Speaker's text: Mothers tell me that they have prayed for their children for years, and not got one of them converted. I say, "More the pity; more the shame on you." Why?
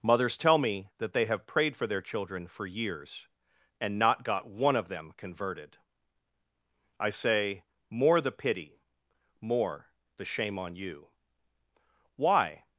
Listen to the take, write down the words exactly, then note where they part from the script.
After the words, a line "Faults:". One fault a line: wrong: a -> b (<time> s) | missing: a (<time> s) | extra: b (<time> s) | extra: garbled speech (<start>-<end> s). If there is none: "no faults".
Mothers tell me that they have prayed for their children for years, and not got one of them converted. I say, "More the pity; more the shame on you." Why?
Faults:
no faults